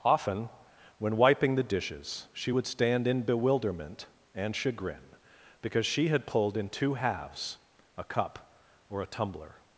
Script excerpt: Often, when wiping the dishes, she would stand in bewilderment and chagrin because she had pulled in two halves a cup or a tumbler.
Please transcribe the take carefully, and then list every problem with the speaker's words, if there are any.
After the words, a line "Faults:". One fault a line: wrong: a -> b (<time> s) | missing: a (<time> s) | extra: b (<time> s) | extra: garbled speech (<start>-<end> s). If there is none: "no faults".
Often, when wiping the dishes, she would stand in bewilderment and chagrin because she had pulled in two halves a cup or a tumbler.
Faults:
no faults